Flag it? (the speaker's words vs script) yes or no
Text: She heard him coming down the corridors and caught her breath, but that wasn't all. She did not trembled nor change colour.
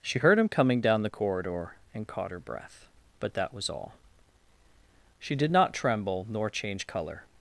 yes